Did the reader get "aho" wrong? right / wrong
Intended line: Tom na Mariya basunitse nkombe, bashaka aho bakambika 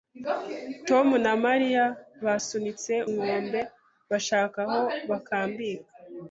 right